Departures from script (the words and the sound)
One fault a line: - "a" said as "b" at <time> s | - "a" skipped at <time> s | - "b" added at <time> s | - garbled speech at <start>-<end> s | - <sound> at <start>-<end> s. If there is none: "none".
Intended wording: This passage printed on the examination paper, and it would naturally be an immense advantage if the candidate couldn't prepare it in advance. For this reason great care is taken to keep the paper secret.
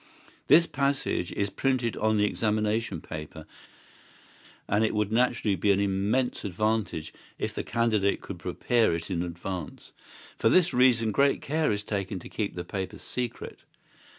- "is" added at 1.3 s
- "couldn't" said as "could" at 8.2 s